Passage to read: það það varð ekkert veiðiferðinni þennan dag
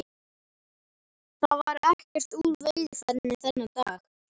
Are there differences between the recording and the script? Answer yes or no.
yes